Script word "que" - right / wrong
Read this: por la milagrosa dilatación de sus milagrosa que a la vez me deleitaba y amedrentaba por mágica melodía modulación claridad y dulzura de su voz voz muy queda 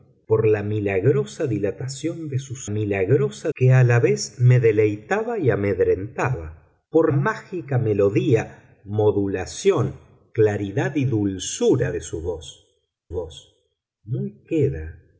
right